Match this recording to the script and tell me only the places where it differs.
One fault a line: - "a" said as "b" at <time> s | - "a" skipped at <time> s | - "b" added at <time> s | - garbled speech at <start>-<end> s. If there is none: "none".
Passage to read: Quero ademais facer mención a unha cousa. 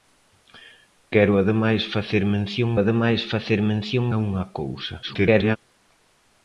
- "ademais facer mención" added at 2.8 s
- garbled speech at 5.0-5.6 s